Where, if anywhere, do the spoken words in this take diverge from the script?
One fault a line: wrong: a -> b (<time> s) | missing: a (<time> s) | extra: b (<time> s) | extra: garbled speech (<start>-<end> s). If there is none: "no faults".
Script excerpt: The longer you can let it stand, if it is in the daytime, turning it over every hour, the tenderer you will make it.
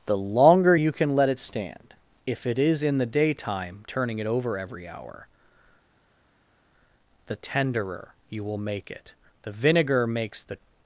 extra: The vinegar makes the (9.4 s)